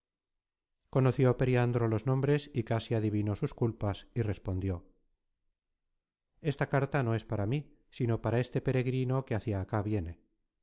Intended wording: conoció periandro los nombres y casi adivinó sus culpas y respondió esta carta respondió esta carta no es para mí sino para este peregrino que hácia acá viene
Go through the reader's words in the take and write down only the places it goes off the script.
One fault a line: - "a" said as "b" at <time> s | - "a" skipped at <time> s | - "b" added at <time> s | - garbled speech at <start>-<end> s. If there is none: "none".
- "respondió esta carta" skipped at 7.0 s